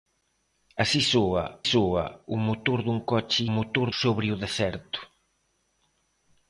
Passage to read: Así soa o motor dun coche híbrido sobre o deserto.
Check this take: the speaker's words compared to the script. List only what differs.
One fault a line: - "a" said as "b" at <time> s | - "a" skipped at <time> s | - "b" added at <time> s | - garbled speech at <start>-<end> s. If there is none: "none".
- "soa" added at 1.7 s
- "híbrido" said as "motor" at 3.6 s